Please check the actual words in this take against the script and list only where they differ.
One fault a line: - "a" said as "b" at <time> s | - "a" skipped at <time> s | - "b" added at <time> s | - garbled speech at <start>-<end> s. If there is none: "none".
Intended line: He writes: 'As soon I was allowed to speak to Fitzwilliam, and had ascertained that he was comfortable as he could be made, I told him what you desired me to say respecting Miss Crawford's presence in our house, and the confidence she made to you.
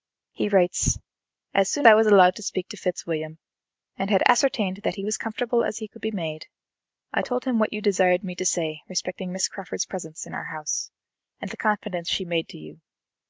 none